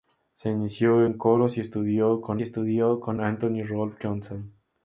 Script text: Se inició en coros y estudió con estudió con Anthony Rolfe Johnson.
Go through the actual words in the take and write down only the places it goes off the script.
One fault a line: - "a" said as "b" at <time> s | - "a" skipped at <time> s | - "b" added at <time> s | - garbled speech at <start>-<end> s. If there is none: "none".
none